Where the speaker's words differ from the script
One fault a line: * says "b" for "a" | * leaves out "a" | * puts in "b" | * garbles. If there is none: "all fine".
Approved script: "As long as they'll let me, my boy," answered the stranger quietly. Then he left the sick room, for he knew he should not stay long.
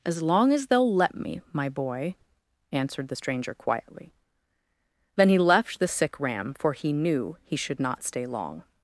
* says "ram" for "room"